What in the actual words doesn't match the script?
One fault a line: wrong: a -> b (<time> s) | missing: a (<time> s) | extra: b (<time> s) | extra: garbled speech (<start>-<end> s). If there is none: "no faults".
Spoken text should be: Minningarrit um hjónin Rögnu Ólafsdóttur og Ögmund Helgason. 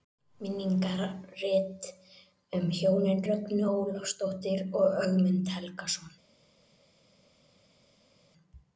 no faults